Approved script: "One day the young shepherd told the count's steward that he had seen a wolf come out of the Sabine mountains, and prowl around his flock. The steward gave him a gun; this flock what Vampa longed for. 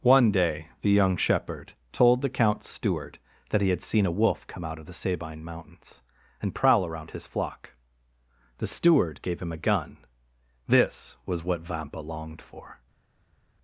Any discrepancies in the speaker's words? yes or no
yes